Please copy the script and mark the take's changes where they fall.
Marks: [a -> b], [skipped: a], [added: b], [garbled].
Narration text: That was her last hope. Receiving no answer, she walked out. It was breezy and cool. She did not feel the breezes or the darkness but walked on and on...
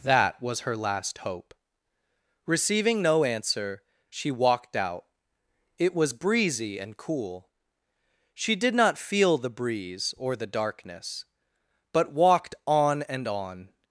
That was her last hope. Receiving no answer, she walked out. It was breezy and cool. She did not feel the [breezes -> breeze] or the darkness but walked on and on...